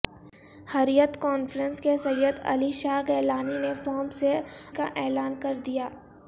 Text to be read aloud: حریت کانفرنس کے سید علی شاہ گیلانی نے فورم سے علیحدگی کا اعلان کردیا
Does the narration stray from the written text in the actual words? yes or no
yes